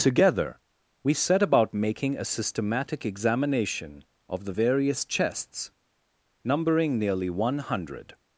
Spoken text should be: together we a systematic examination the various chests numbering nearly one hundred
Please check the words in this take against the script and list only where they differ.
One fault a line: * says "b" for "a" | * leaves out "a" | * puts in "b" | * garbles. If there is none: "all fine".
* puts in "set about making"
* puts in "of"